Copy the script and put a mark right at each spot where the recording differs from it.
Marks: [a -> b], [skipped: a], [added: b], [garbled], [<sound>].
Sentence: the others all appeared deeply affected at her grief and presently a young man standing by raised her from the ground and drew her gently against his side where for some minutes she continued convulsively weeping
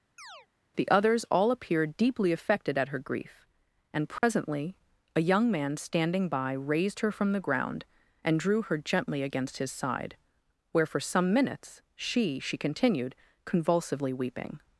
[chirp] the others all appeared deeply affected at her grief and presently [dropout] a young man standing by raised her from the ground and drew her gently against his side where for some minutes she [added: she] continued convulsively weeping